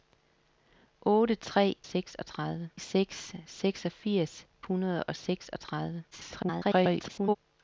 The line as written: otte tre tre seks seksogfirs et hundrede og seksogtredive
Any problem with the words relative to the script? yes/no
yes